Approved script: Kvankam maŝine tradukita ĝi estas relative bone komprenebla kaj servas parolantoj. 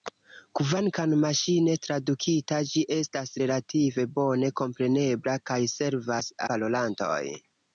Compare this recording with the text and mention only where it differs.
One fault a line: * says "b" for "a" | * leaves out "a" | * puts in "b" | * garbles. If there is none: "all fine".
all fine